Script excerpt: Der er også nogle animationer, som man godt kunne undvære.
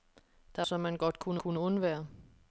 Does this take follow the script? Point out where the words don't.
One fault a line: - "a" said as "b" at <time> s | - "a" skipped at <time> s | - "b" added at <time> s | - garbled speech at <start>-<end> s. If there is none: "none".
- "også nogle animationer" skipped at 0.7 s
- "kunne" added at 1.4 s